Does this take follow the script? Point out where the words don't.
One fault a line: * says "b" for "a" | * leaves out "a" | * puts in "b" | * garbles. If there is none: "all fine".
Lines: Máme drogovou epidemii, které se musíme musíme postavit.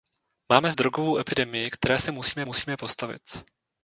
all fine